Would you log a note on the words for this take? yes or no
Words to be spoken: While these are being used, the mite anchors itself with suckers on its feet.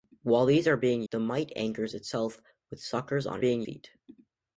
yes